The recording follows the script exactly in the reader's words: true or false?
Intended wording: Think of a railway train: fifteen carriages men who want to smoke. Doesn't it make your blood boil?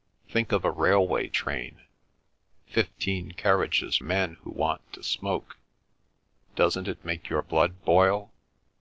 true